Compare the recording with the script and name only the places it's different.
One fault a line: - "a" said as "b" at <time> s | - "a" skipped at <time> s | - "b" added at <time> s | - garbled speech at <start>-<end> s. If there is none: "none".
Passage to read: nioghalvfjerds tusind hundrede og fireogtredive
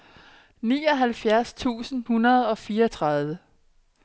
none